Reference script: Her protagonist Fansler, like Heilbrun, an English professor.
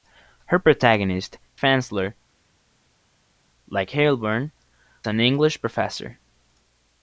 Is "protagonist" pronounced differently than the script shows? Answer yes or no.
no